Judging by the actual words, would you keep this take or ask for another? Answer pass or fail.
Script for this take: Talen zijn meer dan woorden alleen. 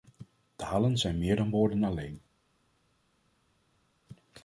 pass